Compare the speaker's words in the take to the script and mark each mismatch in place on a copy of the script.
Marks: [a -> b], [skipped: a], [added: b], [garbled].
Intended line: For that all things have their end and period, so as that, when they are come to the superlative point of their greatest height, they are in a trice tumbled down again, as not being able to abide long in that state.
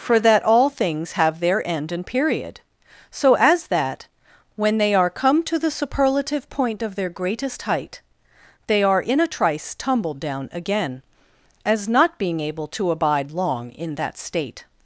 For that all things have their end and period, so as that, when they are come to the superlative point of their greatest height, they are in a trice tumbled down again, as not being able to abide long in that state.